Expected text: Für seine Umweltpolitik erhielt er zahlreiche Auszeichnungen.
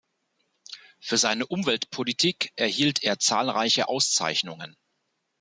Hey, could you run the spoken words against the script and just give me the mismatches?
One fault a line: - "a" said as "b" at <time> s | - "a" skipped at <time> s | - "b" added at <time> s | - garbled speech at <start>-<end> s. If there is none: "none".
none